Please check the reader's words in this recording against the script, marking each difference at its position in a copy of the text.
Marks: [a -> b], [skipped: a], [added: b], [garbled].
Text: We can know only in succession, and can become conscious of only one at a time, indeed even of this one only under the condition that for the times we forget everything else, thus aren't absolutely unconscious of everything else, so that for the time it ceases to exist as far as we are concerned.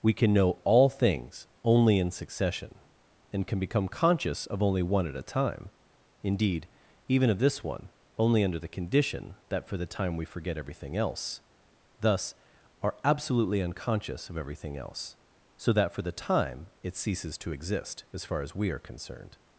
We can know [added: all things] only in succession, and can become conscious of only one at a time, indeed even of this one only under the condition that for the [times -> time] we forget everything else, thus [aren't -> are] absolutely unconscious of everything else, so that for the time it ceases to exist as far as we are concerned.